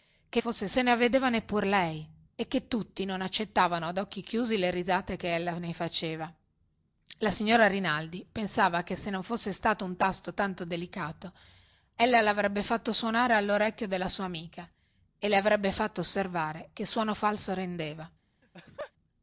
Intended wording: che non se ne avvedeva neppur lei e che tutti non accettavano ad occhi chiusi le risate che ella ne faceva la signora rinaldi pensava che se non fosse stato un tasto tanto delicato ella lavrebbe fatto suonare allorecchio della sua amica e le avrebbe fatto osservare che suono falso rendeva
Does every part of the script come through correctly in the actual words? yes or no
no